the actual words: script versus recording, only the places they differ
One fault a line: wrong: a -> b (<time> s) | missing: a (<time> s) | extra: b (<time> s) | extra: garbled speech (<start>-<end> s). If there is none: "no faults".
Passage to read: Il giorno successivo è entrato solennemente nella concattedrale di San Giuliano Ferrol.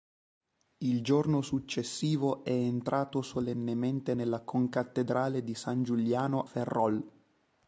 no faults